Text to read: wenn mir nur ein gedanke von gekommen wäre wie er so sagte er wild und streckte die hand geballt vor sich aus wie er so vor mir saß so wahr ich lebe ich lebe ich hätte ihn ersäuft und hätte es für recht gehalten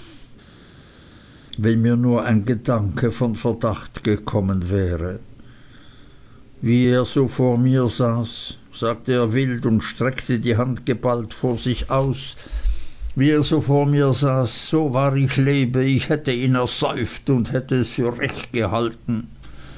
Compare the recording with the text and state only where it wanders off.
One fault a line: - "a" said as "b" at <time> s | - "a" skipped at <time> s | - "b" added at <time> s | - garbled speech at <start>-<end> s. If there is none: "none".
- "verdacht" added at 3.4 s
- "vor mir saß" added at 7.3 s
- "lebe ich" skipped at 16.1 s